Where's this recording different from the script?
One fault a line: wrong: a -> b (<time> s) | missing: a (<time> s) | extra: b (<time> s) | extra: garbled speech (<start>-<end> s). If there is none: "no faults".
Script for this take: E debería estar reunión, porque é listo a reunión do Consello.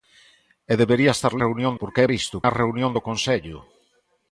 no faults